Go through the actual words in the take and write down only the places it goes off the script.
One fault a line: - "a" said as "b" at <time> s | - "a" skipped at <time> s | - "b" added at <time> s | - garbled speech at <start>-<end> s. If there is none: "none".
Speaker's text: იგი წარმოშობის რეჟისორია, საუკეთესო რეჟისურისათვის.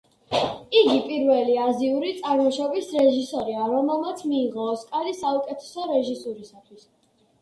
- "პირველი აზიური" added at 1.1 s
- "რომელმაც მიიღო ოსკარი" added at 3.8 s